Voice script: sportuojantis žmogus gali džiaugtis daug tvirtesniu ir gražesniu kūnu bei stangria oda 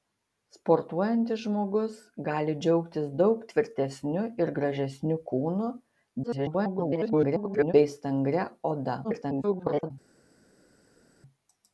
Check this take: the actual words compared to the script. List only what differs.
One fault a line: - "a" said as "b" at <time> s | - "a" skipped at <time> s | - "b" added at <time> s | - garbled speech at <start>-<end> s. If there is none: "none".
- garbled speech at 6.2-7.7 s
- garbled speech at 9.0-9.9 s